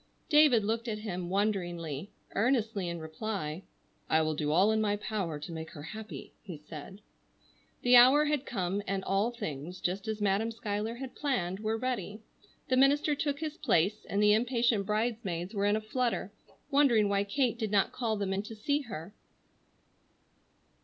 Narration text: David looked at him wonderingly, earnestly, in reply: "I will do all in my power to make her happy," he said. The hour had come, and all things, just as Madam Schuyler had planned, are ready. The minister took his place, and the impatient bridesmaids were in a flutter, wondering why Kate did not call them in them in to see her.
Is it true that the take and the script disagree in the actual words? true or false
true